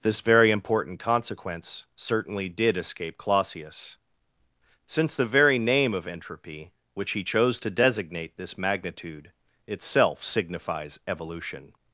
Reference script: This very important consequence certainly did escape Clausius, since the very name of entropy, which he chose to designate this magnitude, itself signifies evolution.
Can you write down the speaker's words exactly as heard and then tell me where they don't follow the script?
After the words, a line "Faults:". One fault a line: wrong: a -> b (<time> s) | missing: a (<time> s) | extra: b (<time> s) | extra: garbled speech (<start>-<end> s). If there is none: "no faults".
This very important consequence certainly did escape Clausius, since the very name of entropy, which he chose to designate this magnitude, itself signifies evolution.
Faults:
no faults